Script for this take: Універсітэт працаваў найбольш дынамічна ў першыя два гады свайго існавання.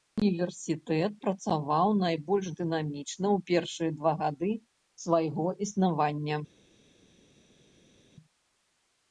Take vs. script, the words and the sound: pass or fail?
pass